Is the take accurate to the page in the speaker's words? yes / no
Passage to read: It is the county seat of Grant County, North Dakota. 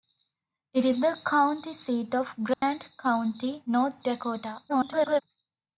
no